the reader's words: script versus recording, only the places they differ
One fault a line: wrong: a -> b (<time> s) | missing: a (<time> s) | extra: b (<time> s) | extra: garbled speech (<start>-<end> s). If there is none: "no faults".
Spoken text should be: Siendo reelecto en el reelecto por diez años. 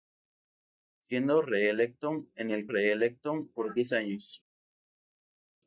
no faults